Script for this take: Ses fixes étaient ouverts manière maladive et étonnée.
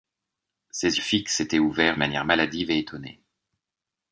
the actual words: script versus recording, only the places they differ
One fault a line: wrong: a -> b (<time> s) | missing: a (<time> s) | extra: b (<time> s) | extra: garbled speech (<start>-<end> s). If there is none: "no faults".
no faults